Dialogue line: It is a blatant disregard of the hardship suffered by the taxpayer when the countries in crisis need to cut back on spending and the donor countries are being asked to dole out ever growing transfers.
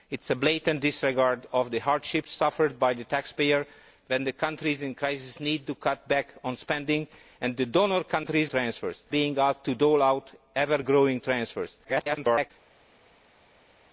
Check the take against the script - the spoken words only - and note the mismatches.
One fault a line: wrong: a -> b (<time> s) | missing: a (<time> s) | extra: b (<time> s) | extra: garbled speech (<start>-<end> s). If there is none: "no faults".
wrong: are -> transfers (8.5 s)
extra: garbled speech (11.8-12.5 s)